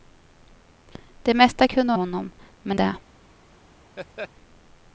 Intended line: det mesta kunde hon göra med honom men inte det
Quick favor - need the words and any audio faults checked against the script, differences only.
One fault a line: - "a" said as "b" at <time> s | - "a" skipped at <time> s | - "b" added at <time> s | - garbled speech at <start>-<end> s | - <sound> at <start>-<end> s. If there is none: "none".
- "hon göra med" skipped at 1.9 s
- "inte" skipped at 2.8 s
- laugh at 4.0-4.3 s